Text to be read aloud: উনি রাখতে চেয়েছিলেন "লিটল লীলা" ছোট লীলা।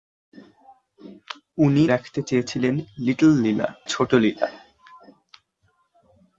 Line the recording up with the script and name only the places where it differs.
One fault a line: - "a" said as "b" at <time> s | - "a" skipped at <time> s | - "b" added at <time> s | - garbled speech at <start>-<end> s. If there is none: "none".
none